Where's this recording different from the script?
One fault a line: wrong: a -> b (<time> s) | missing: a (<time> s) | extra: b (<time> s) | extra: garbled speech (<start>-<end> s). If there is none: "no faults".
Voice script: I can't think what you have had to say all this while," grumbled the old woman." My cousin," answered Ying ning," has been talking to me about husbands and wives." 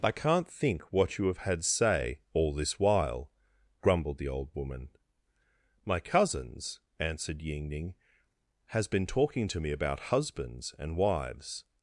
missing: to (1.6 s)
wrong: cousin -> cousins (6.0 s)